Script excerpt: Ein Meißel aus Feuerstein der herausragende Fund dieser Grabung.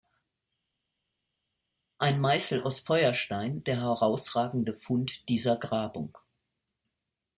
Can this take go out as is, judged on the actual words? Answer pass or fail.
pass